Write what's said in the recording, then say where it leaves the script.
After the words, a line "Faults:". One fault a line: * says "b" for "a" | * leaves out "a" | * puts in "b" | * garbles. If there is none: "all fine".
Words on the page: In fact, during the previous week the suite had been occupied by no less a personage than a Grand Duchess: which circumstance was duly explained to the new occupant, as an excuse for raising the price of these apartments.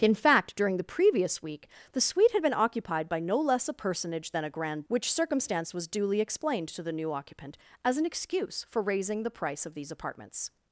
In fact, during the previous week the suite had been occupied by no less a personage than a Grand: Which circumstance was duly explained to the new occupant, as an excuse for raising the price of these apartments.
Faults:
* leaves out "Duchess"